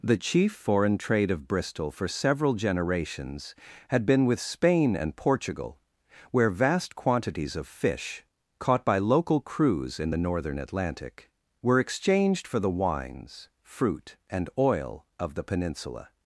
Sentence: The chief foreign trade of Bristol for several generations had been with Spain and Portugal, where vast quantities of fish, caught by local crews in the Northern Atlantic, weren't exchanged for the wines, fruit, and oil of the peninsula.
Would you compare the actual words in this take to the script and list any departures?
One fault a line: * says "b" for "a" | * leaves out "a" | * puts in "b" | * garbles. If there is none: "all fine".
* says "were" for "weren't"